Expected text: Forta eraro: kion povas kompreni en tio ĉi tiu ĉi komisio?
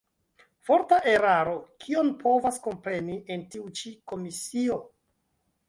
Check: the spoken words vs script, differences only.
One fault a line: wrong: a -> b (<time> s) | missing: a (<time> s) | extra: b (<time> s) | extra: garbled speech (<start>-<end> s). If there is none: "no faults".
missing: tio ĉi (3.5 s)